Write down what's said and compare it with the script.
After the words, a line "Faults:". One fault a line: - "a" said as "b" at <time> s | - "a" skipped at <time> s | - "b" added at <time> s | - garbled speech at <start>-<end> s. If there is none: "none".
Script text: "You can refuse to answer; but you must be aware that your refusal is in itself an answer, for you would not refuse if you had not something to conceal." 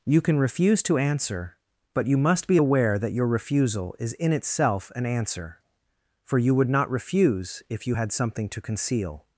"You can refuse to answer; but you must be aware that your refusal is in itself an answer, for you would not refuse if you had something to conceal."
Faults:
- "not" skipped at 8.1 s